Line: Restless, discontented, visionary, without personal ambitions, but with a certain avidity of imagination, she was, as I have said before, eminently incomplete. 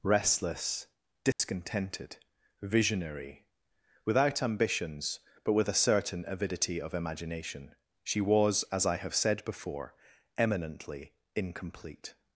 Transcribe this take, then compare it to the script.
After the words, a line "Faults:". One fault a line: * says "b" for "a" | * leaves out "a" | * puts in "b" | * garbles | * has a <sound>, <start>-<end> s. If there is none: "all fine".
Restless, discontented, visionary, without ambitions, but with a certain avidity of imagination, she was, as I have said before, eminently incomplete.
Faults:
* has a dropout, 1.3-1.4 s
* leaves out "personal"